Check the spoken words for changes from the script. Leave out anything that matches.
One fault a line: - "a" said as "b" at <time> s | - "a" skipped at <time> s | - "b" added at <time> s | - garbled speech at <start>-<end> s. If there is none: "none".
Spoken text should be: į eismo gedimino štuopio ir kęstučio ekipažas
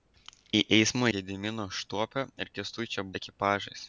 none